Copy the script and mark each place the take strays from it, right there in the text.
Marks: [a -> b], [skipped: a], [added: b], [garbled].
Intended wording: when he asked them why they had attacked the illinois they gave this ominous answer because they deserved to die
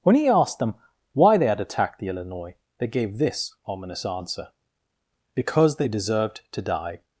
when he asked them why they had attacked the illinois they gave this ominous answer because they deserved to die